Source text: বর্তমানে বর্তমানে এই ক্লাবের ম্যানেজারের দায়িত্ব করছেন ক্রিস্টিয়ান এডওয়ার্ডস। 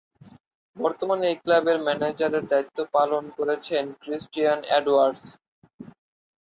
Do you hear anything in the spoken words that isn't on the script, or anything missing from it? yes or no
yes